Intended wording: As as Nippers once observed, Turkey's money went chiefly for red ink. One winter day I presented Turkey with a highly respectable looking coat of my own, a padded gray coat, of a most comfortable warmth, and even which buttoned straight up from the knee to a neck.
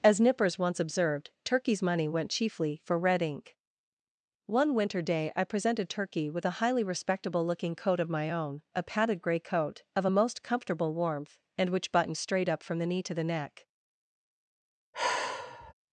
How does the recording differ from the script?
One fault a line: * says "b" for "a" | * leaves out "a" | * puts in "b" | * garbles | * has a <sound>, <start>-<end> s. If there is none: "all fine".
* leaves out "as"
* leaves out "even"
* says "the" for "a"
* has a sigh, 14.9-15.7 s